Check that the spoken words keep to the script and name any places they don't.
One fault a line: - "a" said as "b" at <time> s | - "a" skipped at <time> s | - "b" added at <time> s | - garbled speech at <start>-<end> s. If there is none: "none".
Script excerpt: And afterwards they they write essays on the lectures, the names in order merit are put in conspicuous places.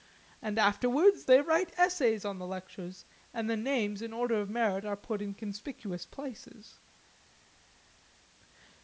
- "they" skipped at 1.4 s
- "and" added at 3.3 s
- "of" added at 4.4 s